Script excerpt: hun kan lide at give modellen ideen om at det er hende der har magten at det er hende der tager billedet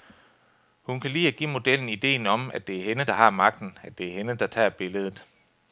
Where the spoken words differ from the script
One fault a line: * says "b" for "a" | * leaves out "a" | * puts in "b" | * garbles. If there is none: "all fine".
all fine